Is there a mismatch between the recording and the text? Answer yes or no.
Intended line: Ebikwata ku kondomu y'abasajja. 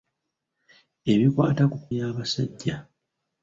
yes